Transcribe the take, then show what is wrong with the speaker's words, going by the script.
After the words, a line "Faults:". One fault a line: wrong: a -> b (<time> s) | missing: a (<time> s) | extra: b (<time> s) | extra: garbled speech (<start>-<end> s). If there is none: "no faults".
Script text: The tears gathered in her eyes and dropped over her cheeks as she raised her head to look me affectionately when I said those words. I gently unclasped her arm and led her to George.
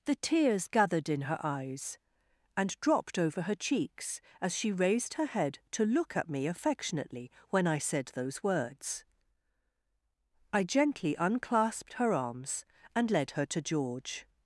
The tears gathered in her eyes and dropped over her cheeks as she raised her head to look at me affectionately when I said those words. I gently unclasped her arms and led her to George.
Faults:
extra: at (6.2 s)
wrong: arm -> arms (12.1 s)